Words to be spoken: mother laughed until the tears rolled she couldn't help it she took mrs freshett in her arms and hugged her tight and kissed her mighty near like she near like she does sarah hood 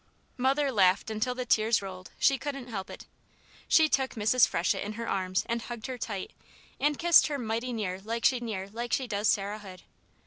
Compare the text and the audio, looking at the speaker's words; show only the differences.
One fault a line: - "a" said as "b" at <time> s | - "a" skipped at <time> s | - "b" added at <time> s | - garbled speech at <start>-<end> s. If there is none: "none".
none